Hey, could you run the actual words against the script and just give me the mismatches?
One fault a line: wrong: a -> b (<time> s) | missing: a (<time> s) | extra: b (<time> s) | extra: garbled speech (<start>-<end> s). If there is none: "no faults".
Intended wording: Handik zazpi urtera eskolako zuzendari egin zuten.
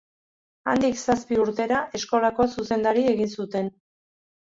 no faults